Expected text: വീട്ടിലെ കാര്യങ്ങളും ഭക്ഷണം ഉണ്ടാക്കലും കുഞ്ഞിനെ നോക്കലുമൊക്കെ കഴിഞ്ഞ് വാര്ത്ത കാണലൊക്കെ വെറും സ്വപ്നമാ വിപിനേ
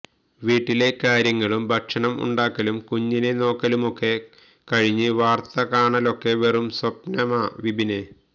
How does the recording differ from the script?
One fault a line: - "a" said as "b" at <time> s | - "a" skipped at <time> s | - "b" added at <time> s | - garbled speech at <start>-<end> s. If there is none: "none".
none